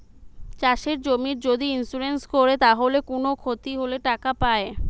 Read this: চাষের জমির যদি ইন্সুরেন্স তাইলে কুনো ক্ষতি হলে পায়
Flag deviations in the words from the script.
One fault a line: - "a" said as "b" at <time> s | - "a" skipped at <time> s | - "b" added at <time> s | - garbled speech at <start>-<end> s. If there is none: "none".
- "কোরে" added at 2.3 s
- "টাকা" added at 4.1 s